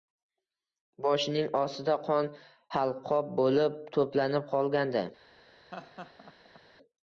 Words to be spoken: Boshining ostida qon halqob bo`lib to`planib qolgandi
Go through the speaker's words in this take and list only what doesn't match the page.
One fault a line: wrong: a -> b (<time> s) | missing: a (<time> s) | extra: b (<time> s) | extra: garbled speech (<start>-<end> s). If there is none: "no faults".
no faults